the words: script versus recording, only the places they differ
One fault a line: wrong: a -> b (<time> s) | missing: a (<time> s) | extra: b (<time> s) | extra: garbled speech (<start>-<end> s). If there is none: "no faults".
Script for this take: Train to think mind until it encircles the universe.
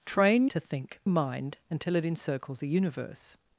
no faults